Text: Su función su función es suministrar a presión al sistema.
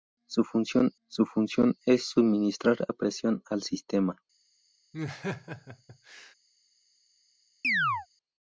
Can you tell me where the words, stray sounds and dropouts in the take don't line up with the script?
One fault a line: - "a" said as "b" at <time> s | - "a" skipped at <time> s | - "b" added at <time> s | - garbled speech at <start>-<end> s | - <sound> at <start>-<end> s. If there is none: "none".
- laugh at 4.9-6.3 s
- chirp at 7.6-8.1 s